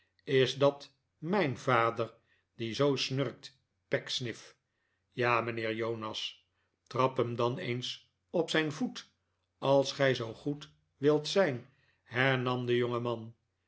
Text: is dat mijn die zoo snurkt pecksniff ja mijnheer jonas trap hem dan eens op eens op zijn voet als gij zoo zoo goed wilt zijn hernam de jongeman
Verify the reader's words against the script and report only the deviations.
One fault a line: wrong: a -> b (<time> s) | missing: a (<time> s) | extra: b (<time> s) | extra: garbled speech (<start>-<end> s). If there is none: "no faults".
extra: vader (1.6 s)
missing: eens op (8.5 s)
missing: zoo (10.3 s)